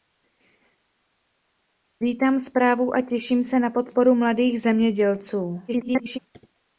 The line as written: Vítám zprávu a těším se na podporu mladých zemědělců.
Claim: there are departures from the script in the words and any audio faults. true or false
true